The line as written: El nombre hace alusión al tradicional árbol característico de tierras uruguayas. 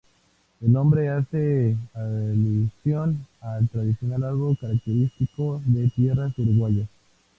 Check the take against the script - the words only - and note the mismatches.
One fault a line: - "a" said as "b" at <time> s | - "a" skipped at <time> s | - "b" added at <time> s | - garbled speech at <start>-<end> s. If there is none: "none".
none